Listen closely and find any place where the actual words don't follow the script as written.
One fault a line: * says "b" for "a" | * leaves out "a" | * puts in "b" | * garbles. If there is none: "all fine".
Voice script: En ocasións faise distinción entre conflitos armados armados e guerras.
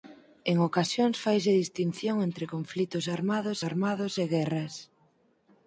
all fine